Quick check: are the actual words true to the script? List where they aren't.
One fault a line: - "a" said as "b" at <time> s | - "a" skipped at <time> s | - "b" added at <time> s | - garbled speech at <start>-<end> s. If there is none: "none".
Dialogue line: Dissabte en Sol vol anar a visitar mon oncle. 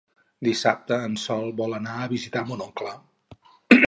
none